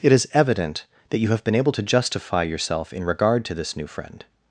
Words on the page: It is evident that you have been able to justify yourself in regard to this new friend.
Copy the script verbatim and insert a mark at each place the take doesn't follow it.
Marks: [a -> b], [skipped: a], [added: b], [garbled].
It is evident that you have been able to justify yourself in regard to this new friend.